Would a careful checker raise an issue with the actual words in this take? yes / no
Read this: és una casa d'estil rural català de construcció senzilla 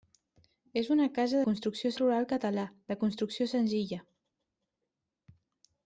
yes